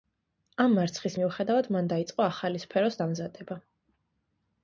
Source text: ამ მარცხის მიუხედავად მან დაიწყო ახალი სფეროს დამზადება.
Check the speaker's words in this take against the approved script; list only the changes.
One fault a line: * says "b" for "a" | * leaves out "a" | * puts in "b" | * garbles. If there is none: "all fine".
all fine